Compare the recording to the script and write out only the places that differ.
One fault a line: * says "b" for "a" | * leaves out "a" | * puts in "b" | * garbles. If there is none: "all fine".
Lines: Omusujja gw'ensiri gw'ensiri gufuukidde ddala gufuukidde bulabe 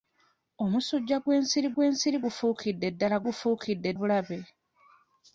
all fine